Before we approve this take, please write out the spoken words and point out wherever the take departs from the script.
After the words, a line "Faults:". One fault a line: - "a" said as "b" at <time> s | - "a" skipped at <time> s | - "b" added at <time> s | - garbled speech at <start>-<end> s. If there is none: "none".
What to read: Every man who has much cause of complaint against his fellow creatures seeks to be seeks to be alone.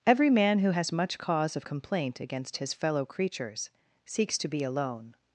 Every man who has much cause of complaint against his fellow creatures seeks to be alone.
Faults:
- "seeks to be" skipped at 4.6 s